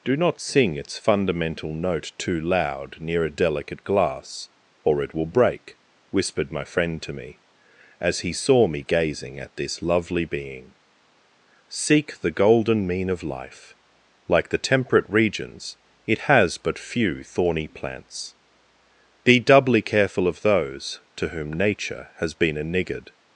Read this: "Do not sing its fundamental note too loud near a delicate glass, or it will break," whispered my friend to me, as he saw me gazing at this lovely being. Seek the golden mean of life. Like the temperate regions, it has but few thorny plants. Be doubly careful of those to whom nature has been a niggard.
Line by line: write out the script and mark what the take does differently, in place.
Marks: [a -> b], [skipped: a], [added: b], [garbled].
"Do not sing its fundamental note too loud near a delicate glass, or it will break," whispered my friend to me, as he saw me gazing at this lovely being. Seek the golden mean of life. Like the temperate regions, it has but few thorny plants. Be doubly careful of those to whom nature has been a niggard.